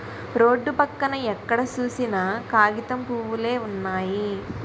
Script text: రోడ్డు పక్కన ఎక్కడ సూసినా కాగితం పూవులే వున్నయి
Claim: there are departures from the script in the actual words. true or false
false